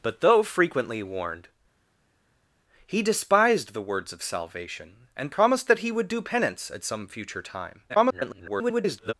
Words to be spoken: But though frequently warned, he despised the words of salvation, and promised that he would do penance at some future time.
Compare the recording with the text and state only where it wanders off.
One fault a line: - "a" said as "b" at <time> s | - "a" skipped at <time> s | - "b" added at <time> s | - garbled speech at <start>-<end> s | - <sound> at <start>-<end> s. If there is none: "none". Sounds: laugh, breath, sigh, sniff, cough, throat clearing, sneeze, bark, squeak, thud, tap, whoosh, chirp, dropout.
- garbled speech at 7.9-9.1 s